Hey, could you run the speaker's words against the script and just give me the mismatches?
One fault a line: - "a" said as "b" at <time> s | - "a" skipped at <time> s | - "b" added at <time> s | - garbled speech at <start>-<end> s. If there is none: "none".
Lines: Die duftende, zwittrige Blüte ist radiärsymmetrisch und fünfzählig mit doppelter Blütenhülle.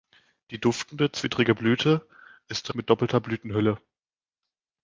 - "radiärsymmetrisch und fünfzählig" skipped at 2.7 s